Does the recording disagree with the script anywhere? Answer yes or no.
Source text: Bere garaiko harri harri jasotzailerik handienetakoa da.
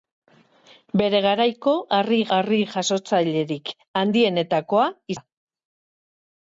no